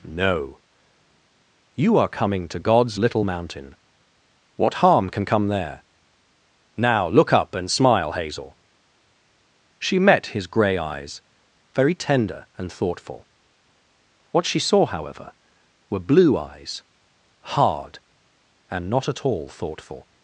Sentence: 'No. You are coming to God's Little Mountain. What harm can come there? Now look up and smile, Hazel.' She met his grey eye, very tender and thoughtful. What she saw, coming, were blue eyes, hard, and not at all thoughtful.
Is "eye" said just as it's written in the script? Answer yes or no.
no